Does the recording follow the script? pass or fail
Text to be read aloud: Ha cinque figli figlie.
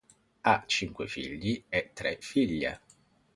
fail